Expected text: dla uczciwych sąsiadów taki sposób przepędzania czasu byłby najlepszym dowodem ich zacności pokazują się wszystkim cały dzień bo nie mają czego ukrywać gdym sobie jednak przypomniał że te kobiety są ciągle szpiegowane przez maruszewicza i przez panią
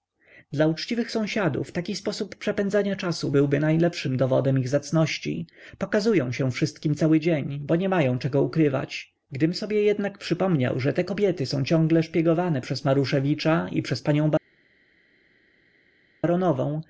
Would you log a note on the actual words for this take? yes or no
no